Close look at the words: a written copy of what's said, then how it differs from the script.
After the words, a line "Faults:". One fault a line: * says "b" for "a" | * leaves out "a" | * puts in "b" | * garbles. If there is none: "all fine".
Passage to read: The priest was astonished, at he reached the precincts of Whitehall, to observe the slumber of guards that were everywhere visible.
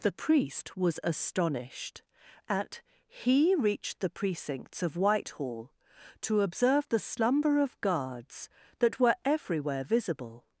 The priest was astonished, at he reached the precincts of Whitehall, to observe the slumber of guards that were everywhere visible.
Faults:
all fine